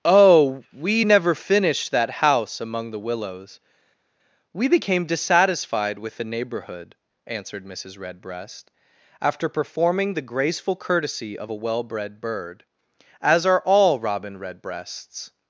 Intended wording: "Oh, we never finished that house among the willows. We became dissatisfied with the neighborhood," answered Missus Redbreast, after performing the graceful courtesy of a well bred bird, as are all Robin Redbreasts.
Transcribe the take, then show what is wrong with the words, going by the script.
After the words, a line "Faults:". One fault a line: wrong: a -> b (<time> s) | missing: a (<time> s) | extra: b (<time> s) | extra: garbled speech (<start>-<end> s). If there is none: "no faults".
"Oh, we never finished that house among the willows. We became dissatisfied with the neighborhood," answered Missus Redbreast, after performing the graceful courtesy of a well bred bird, as are all Robin Redbreasts.
Faults:
no faults